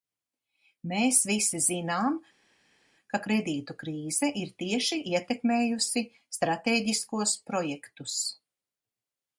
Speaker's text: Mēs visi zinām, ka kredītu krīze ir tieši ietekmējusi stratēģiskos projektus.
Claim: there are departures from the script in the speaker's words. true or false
false